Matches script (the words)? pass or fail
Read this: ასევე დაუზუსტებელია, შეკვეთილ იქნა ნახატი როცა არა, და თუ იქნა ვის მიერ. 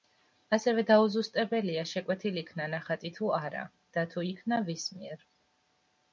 fail